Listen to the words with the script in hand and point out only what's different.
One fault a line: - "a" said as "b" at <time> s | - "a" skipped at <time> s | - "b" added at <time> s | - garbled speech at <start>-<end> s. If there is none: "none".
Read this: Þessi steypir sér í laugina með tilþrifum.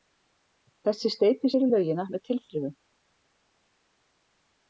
none